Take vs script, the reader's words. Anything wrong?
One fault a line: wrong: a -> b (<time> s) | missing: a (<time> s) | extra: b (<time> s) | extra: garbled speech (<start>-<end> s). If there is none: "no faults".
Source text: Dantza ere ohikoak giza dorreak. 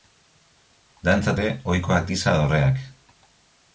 no faults